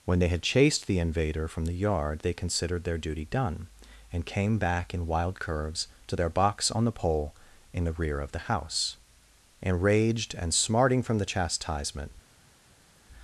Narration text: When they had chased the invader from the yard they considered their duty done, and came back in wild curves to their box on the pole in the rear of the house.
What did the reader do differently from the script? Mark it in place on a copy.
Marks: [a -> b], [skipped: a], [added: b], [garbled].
When they had chased the invader from the yard they considered their duty done, and came back in wild curves to their box on the pole in the rear of the house. [added: Enraged and smarting from the chastisement]